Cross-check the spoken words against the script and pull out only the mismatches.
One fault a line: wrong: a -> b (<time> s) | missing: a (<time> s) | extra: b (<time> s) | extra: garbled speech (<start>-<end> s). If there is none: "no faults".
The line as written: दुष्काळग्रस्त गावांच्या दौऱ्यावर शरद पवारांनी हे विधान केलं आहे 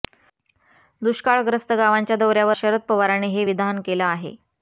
no faults